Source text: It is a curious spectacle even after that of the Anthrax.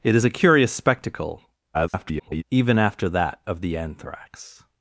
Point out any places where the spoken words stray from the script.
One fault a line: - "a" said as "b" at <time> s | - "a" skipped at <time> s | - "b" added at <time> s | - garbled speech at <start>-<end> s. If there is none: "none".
- garbled speech at 1.7-2.4 s